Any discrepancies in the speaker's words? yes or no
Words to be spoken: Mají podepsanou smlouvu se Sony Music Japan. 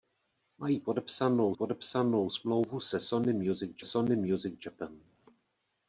yes